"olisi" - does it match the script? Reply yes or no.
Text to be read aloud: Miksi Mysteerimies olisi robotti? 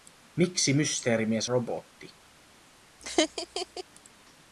no